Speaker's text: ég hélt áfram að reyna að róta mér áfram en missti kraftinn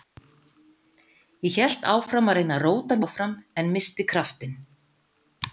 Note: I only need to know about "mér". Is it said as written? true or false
false